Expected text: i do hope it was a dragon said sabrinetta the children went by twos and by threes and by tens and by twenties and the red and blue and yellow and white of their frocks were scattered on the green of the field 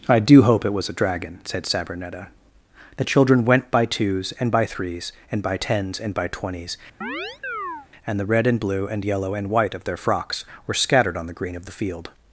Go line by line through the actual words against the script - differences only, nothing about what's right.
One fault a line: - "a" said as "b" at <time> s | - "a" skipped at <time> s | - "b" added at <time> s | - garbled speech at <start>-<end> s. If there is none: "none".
none